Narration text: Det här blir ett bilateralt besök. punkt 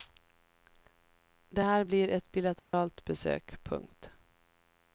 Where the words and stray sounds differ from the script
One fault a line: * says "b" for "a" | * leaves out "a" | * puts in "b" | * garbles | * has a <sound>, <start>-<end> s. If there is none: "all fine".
* has a dropout, 2.6-2.7 s